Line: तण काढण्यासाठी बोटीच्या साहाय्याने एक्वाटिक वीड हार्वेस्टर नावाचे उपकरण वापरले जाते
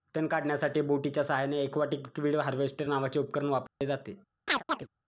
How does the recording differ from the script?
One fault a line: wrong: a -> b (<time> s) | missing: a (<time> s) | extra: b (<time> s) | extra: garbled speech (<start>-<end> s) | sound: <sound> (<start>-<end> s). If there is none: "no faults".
sound: dropout (3.7-3.8 s)
sound: chirp (4.5-4.9 s)